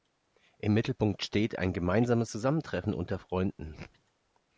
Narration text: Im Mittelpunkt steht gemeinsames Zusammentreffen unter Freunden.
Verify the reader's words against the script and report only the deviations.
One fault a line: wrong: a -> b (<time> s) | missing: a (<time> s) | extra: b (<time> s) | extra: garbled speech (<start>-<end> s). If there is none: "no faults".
extra: ein (1.6 s)